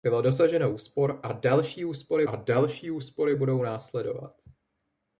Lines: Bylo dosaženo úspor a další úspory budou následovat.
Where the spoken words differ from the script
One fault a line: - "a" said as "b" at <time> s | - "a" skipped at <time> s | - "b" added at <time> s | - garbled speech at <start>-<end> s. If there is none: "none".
- "a další úspory" added at 2.2 s